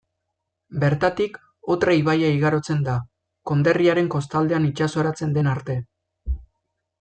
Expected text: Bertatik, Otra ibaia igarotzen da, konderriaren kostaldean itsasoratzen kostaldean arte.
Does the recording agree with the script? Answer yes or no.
no